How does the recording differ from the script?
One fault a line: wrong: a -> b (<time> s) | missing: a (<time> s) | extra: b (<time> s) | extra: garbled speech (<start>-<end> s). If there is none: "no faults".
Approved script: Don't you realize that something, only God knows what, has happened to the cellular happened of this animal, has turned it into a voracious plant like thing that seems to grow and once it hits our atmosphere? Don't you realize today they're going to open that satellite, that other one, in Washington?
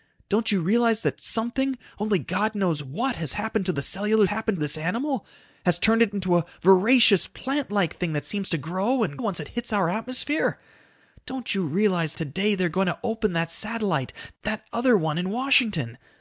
no faults